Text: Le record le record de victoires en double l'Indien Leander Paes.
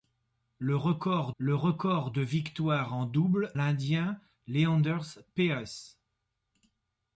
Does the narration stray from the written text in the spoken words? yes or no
no